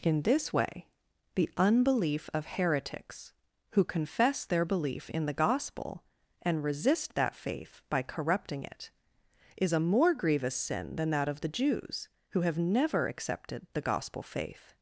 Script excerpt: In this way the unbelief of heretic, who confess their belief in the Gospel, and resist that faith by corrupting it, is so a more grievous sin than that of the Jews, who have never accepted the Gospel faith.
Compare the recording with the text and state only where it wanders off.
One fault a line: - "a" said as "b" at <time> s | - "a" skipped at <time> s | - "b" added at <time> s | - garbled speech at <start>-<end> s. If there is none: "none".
- "heretic" said as "heretics" at 2.5 s
- "so" skipped at 9.7 s